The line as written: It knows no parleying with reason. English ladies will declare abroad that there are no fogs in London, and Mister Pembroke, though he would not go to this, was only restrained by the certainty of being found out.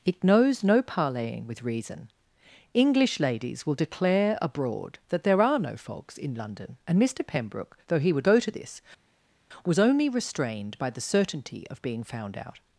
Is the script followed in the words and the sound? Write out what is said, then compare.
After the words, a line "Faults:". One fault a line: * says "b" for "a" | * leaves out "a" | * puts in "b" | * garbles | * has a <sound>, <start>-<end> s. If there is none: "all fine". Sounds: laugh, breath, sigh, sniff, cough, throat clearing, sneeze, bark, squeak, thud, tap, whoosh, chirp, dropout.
It knows no parleying with reason. English ladies will declare abroad that there are no fogs in London, and Mister Pembroke, though he would go to this, was only restrained by the certainty of being found out.
Faults:
* leaves out "not"